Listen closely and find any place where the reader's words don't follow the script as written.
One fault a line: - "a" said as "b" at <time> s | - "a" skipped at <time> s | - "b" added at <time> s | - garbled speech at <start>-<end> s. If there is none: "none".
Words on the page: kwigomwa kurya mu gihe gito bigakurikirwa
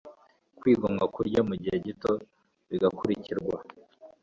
none